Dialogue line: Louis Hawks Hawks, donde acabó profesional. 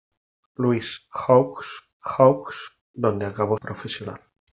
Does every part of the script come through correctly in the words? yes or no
yes